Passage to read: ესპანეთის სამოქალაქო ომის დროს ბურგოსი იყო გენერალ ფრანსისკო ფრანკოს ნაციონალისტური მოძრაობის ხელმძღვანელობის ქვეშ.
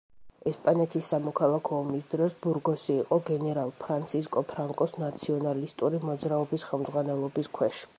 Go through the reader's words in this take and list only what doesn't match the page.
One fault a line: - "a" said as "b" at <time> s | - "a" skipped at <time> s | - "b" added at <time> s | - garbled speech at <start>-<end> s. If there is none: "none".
none